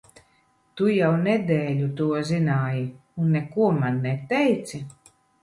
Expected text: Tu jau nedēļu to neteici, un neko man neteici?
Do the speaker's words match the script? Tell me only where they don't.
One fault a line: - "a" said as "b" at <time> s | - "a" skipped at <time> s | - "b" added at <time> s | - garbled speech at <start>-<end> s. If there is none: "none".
- "neteici" said as "zināji" at 2.3 s